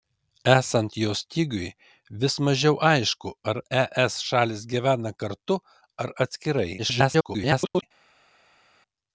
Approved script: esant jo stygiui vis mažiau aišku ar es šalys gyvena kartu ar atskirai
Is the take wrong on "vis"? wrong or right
right